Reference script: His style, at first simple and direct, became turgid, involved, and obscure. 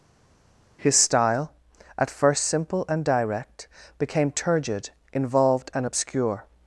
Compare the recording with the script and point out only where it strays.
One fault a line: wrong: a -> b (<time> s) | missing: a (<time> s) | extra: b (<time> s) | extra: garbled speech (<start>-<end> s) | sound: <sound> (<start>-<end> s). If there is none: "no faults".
no faults